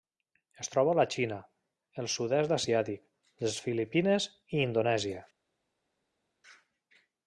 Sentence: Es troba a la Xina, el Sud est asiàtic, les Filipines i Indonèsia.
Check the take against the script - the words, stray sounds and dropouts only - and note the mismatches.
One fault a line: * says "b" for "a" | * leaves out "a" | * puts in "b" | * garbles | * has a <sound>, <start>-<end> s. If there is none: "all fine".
all fine